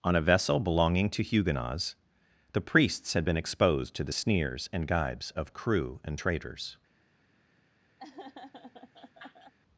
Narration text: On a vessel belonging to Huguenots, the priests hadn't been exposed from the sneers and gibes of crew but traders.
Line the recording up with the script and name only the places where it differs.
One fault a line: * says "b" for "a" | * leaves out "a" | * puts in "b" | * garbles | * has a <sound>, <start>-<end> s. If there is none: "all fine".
* says "had" for "hadn't"
* says "to" for "from"
* says "and" for "but"
* has a laugh, 8.0-9.5 s